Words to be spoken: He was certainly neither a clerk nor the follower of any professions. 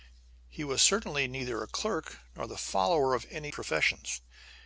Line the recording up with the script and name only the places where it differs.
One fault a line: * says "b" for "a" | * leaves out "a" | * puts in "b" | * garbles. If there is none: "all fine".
all fine